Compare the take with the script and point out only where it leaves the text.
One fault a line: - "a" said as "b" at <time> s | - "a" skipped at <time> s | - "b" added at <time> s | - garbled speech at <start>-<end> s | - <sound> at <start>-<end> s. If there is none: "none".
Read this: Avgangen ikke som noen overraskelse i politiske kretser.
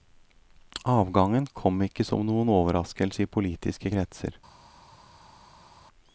- "kom" added at 1.6 s